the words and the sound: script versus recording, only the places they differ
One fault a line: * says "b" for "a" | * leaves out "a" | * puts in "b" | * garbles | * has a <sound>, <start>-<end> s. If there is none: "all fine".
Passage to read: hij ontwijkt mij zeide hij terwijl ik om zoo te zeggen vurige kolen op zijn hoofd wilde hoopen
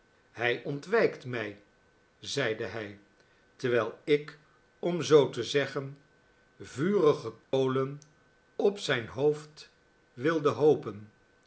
* has a dropout, 7.4-7.5 s